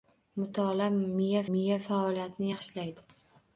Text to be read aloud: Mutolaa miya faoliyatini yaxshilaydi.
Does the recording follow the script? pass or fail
fail